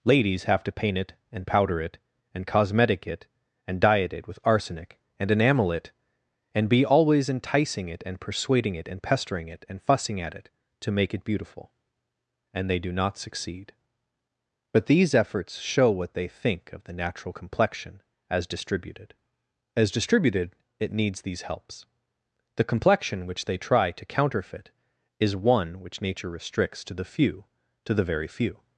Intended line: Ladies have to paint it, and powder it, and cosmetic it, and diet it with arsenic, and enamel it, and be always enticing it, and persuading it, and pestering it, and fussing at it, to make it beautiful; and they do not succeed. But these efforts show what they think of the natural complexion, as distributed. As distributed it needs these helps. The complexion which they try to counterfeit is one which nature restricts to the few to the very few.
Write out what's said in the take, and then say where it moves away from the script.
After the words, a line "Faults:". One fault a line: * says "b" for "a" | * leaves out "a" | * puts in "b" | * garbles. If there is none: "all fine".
Ladies have to paint it, and powder it, and cosmetic it, and diet it with arsenic, and enamel it, and be always enticing it, and persuading it, and pestering it, and fussing at it, to make it beautiful; and they do not succeed. But these efforts show what they think of the natural complexion, as distributed. As distributed it needs these helps. The complexion which they try to counterfeit is one which nature restricts to the few to the very few.
Faults:
all fine